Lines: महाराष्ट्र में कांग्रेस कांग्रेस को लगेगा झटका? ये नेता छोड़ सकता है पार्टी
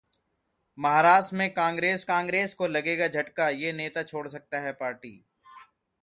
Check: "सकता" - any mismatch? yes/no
no